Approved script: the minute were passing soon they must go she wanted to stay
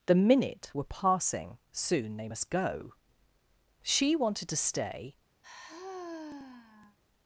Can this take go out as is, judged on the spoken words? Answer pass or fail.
pass